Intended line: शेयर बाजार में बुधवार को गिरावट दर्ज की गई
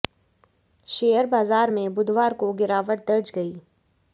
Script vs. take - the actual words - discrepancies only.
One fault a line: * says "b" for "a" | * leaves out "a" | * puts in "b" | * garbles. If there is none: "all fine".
* leaves out "की"